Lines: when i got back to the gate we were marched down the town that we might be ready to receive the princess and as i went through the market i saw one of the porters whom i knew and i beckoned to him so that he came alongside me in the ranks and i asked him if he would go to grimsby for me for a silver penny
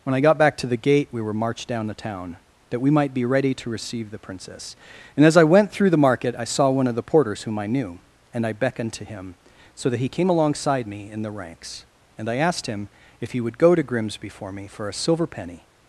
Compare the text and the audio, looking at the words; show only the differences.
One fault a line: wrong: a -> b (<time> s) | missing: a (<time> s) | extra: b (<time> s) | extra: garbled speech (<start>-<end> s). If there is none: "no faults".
no faults